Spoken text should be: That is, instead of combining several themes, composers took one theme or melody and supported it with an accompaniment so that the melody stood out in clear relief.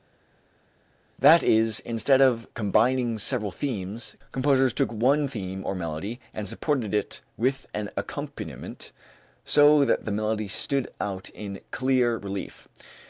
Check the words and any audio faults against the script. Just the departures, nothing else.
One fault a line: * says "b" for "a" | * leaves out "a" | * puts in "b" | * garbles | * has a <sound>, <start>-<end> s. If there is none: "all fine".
all fine